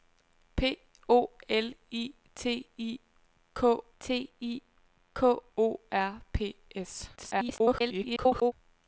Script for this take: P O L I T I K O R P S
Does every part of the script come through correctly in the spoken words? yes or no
no